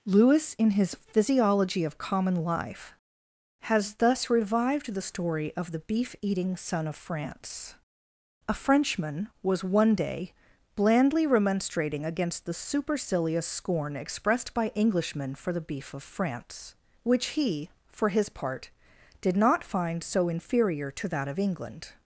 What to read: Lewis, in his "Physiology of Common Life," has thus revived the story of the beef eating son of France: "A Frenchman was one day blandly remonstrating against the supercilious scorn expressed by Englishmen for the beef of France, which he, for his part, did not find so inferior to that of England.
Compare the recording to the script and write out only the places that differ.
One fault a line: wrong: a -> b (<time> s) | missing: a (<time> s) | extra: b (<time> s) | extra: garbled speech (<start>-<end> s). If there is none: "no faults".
no faults